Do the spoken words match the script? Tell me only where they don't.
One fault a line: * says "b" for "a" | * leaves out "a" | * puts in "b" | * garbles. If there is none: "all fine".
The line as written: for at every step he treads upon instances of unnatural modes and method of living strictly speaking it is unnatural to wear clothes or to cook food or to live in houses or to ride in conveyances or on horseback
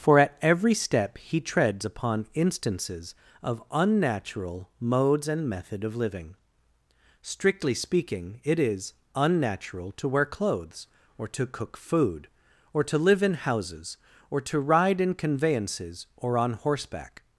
all fine